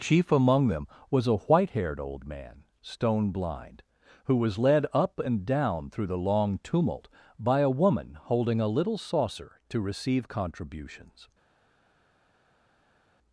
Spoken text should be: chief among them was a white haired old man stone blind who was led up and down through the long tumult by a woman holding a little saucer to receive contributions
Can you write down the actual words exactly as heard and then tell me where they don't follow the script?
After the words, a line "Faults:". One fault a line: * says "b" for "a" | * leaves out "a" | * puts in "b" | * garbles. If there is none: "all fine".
chief among them was a white haired old man stone blind who was led up and down through the long tumult by a woman holding a little saucer to receive contributions
Faults:
all fine